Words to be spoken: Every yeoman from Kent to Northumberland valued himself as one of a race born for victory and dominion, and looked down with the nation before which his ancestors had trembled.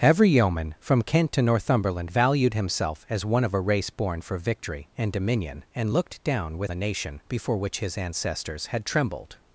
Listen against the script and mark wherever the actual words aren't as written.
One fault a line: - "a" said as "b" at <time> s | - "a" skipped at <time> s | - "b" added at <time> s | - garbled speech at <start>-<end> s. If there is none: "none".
none